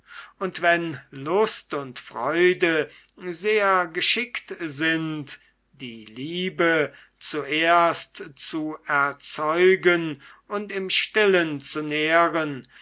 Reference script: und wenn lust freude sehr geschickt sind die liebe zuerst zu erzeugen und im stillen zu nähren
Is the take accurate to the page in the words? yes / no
no